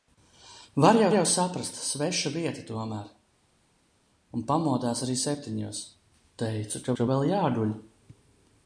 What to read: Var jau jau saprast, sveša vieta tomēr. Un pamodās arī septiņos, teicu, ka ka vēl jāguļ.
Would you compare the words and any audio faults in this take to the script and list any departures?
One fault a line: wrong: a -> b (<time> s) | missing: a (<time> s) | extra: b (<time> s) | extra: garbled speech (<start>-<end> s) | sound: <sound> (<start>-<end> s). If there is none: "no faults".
no faults